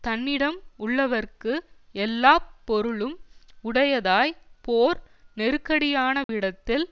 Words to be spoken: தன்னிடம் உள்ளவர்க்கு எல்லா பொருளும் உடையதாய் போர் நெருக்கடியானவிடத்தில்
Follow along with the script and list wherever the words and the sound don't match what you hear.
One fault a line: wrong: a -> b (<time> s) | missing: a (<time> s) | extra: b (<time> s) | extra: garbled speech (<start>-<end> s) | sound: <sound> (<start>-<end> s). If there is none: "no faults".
sound: dropout (6.2-6.3 s)